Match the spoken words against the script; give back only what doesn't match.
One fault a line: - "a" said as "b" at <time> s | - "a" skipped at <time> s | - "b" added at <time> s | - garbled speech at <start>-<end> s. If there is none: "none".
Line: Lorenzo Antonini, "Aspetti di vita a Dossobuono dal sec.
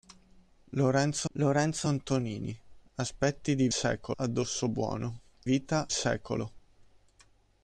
- "lorenzo" added at 1.3 s
- "vita" said as "sec" at 3.7 s
- "dal" said as "vita" at 5.4 s